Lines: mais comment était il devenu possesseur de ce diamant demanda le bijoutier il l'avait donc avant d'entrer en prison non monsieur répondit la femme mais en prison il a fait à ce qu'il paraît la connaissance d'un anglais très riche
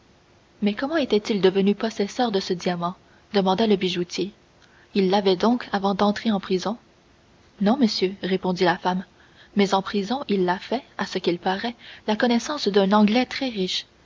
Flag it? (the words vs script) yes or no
no